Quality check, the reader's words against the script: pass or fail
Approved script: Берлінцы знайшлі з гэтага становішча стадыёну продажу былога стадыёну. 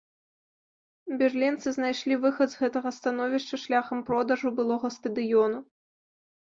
fail